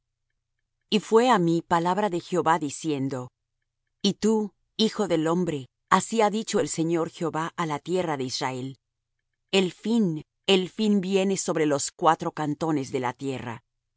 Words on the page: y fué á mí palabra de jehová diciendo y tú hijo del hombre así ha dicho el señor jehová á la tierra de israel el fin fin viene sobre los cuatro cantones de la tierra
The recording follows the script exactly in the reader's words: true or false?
false